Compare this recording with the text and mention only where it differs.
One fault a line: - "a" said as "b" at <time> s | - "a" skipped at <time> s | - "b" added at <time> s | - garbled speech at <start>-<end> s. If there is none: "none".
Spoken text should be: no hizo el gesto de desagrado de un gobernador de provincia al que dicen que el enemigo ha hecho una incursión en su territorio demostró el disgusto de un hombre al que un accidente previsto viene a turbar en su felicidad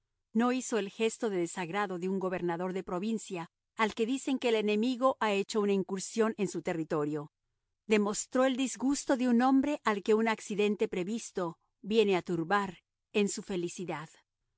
none